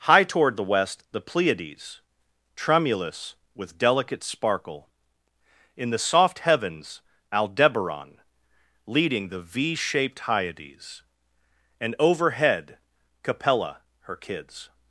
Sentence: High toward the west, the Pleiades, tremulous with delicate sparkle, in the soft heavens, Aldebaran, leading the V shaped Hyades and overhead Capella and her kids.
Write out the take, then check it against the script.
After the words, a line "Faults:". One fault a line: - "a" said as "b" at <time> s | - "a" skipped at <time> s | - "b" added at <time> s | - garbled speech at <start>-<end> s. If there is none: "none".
High toward the west, the Pleiades, tremulous with delicate sparkle, in the soft heavens, Aldebaran, leading the V shaped Hyades and overhead Capella her kids.
Faults:
- "and" skipped at 13.8 s